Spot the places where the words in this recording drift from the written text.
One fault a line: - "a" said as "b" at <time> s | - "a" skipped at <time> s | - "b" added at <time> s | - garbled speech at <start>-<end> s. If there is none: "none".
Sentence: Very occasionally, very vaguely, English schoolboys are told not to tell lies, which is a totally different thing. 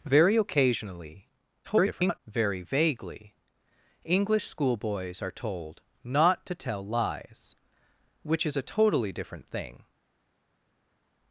- garbled speech at 1.6-2.2 s